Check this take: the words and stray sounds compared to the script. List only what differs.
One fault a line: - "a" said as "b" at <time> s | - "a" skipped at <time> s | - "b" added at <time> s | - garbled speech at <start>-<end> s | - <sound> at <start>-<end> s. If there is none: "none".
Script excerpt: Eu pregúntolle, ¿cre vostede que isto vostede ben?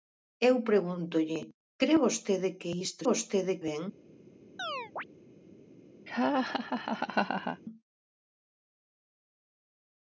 - chirp at 4.6-5.0 s
- laugh at 6.1-7.6 s